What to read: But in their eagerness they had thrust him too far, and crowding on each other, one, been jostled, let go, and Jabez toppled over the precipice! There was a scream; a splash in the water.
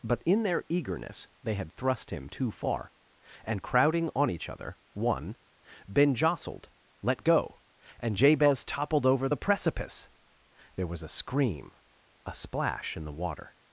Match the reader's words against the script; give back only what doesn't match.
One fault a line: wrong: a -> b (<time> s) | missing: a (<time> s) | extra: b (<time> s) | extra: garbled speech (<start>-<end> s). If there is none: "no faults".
no faults